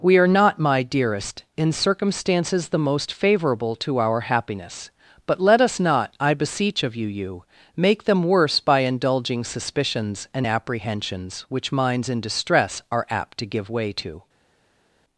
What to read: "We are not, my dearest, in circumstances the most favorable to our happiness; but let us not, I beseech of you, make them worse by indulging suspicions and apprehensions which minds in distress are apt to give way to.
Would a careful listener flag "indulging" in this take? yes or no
no